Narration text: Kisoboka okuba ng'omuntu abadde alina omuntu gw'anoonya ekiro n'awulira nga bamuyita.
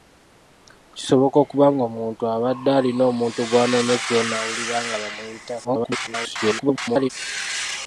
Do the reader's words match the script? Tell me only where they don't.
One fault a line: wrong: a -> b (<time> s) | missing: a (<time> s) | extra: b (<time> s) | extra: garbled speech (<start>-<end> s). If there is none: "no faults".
extra: garbled speech (5.6-7.1 s)